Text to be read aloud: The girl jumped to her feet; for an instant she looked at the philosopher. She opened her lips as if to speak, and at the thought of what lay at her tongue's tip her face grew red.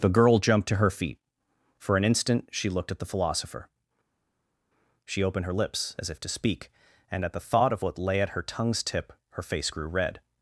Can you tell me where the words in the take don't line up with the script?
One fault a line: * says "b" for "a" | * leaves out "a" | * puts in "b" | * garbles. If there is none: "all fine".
all fine